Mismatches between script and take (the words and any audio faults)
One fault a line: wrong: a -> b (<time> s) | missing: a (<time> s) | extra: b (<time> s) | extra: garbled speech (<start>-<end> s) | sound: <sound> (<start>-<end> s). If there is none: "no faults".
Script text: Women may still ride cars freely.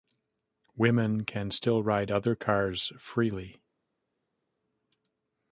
wrong: may -> can (1.2 s)
extra: other (2.1 s)